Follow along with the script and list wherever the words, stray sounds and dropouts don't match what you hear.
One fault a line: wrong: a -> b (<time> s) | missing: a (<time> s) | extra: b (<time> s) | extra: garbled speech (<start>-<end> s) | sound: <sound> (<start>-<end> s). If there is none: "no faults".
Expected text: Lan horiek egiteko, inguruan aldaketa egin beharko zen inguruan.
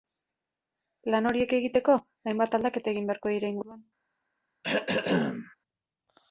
wrong: inguruan -> hainbat (2.3 s)
wrong: zen -> dira (3.4 s)
sound: throat clearing (4.6-5.6 s)